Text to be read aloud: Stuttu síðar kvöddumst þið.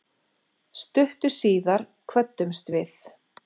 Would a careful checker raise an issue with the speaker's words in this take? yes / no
yes